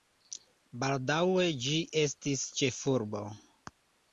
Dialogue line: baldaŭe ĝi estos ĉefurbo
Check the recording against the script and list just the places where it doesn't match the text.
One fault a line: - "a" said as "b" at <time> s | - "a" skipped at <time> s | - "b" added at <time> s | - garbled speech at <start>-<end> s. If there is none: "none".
- "estos" said as "estis" at 2.0 s